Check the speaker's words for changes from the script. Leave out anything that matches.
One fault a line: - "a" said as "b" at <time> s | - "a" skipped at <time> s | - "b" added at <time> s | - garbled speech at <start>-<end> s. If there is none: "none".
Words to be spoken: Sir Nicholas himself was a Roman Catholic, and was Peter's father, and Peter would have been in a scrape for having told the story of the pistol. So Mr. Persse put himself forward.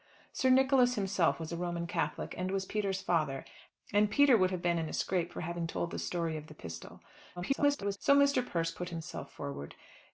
- garbled speech at 7.4-8.0 s